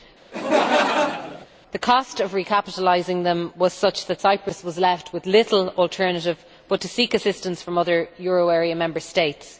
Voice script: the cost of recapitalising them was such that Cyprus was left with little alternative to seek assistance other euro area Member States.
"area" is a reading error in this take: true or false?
false